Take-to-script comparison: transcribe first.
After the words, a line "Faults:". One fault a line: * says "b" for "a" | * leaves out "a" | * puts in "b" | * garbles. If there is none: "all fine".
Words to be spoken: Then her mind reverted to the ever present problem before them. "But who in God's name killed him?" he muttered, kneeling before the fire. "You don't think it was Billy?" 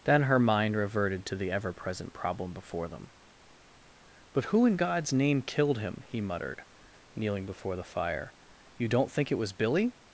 Then her mind reverted to the ever present problem before them. "But who in God's name killed him?" he muttered, kneeling before the fire. "You don't think it was Billy?"
Faults:
all fine